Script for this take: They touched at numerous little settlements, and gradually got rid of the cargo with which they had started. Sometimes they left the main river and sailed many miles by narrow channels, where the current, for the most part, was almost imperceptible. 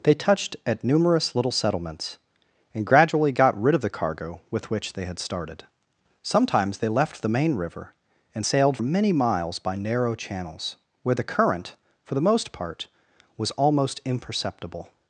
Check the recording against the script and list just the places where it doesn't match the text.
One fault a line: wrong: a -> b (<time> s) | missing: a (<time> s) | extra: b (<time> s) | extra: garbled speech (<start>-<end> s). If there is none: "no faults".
no faults